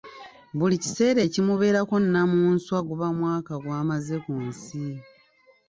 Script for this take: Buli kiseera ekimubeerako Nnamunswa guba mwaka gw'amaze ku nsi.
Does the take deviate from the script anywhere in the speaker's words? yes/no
no